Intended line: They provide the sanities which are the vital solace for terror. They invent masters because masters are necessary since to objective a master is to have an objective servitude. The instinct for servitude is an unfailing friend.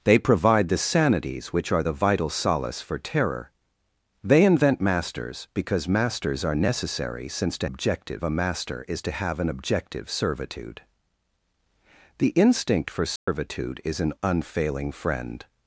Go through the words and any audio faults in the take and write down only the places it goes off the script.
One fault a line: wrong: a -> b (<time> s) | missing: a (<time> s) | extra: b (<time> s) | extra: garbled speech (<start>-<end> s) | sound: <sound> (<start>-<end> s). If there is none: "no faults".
sound: dropout (13.2-13.3 s)